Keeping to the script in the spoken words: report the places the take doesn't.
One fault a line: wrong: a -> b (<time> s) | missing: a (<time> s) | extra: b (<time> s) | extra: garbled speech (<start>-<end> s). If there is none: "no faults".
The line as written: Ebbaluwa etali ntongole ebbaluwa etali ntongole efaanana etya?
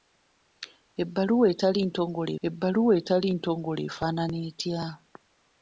no faults